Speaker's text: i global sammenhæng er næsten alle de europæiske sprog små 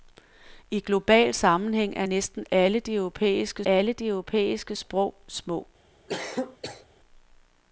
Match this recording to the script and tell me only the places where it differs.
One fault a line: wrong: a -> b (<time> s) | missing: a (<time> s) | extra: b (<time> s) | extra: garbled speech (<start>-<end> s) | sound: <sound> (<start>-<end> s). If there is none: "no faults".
extra: alle de europæiske (3.7 s)
sound: cough (6.1-6.9 s)